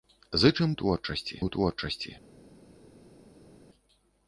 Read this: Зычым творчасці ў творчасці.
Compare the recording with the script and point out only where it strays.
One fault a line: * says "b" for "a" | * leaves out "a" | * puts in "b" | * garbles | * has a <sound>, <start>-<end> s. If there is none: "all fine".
all fine